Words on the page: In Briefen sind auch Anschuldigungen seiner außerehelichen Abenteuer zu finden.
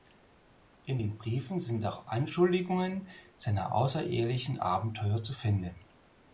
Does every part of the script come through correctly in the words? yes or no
no